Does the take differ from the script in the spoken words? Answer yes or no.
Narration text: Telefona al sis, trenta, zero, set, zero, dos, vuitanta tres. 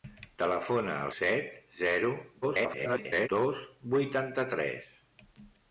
yes